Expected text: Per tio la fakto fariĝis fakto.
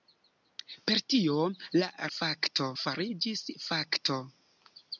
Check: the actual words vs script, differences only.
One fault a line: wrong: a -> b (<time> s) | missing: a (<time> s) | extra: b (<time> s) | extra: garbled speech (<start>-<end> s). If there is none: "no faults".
no faults